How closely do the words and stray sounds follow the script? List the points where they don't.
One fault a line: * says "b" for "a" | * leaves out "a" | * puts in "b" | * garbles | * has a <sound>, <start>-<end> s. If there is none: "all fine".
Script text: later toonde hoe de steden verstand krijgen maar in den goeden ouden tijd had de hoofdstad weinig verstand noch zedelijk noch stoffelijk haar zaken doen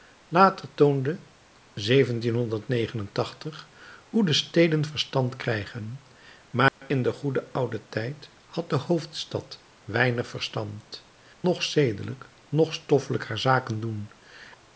* has a dropout, 6.7-6.8 s